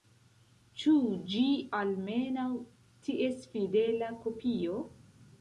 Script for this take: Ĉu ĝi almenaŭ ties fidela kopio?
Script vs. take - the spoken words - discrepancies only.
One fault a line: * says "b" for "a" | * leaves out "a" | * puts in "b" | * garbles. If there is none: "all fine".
all fine